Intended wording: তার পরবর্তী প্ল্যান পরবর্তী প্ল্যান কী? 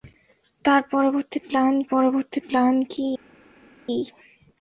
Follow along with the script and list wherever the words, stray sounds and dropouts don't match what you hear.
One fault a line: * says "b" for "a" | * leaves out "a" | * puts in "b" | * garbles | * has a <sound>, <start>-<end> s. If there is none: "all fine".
all fine